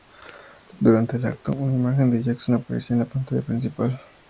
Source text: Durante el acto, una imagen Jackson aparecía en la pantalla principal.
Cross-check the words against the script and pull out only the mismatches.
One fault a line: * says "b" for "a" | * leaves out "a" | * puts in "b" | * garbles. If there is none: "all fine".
* puts in "de"